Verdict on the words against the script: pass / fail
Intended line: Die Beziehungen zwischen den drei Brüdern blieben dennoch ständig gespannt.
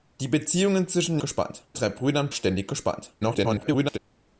fail